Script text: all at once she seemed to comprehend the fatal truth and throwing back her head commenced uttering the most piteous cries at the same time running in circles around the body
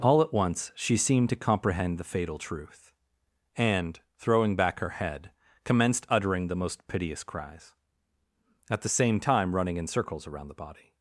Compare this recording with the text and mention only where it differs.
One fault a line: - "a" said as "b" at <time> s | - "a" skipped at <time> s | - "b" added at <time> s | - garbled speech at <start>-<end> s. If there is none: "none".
none